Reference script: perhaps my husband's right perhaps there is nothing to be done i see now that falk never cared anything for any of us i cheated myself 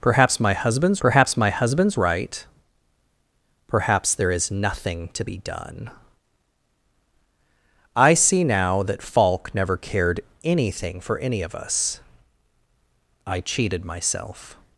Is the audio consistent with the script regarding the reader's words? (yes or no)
no